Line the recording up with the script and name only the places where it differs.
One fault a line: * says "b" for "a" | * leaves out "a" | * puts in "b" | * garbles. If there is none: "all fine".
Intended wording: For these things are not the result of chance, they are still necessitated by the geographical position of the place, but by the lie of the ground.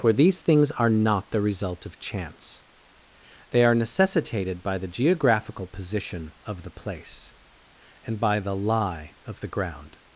* leaves out "still"
* says "and" for "but"